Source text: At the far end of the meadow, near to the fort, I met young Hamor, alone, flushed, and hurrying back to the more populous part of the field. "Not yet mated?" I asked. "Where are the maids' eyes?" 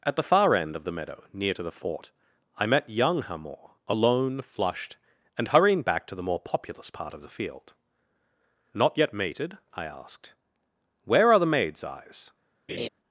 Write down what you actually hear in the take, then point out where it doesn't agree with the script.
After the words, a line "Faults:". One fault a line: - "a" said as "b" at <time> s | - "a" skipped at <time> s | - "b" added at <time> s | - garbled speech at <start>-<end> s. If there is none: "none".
At the far end of the meadow, near to the fort, I met young Hamor, alone, flushed, and hurrying back to the more populous part of the field. "Not yet mated?" I asked. "Where are the maids' eyes?"
Faults:
none